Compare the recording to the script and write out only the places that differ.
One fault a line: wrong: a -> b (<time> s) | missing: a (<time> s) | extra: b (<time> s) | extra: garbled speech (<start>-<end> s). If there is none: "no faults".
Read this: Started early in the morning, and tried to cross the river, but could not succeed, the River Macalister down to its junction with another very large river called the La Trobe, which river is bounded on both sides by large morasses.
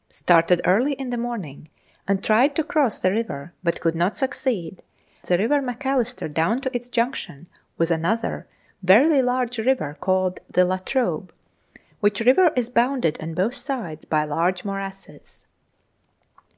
no faults